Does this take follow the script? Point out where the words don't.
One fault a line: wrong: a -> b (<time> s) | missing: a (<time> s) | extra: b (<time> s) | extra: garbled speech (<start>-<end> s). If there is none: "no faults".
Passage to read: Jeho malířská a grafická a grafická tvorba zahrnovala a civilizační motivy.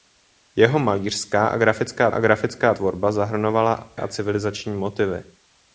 no faults